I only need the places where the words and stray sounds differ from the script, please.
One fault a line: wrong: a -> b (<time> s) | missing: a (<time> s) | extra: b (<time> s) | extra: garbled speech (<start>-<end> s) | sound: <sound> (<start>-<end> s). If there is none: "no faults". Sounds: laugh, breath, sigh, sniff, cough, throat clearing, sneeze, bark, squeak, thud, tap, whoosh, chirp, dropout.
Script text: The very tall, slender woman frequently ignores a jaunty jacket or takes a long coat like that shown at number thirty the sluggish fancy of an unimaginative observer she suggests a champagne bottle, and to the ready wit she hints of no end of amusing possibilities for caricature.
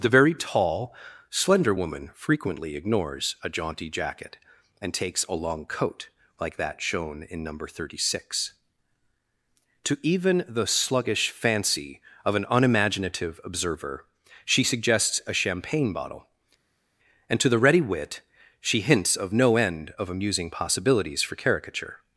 wrong: or -> and (4.8 s)
wrong: at -> in (7.2 s)
extra: six To even (8.2 s)